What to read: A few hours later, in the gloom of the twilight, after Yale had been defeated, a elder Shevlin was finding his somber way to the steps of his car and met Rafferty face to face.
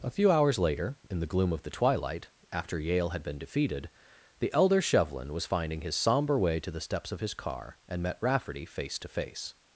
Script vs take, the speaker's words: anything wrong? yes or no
yes